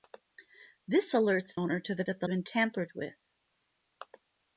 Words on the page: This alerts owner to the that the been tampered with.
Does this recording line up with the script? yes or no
yes